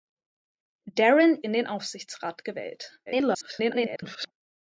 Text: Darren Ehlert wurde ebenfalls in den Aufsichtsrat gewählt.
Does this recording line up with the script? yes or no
no